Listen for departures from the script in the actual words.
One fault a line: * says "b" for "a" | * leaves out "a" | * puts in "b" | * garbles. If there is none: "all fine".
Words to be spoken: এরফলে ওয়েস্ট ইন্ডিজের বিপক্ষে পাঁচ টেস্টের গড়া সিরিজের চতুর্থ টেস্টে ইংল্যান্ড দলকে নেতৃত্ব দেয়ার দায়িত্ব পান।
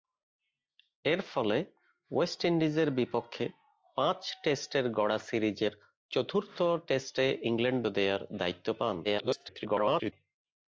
* leaves out "দলকে নেতৃত্ব"
* garbles